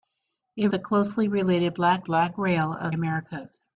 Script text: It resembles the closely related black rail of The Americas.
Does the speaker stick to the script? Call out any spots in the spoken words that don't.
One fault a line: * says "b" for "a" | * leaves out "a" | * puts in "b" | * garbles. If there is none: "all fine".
* leaves out "resembles"
* puts in "black"
* leaves out "The"